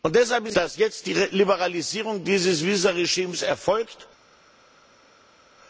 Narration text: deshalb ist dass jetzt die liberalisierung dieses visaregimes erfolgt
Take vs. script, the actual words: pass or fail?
pass